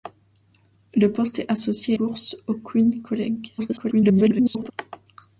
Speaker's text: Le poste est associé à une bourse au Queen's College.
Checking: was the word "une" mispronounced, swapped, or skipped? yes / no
yes